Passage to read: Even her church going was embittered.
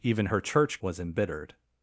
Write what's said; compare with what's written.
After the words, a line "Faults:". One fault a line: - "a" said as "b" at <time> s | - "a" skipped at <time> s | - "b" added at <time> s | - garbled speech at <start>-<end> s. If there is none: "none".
Even her church was embittered.
Faults:
- "going" skipped at 0.8 s